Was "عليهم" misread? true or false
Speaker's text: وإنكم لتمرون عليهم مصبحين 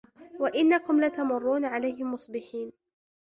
false